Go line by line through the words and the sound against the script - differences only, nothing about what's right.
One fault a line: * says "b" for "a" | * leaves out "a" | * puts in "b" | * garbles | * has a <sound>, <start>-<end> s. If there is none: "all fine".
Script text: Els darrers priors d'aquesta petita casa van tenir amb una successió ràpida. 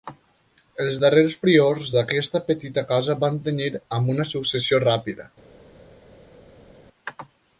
all fine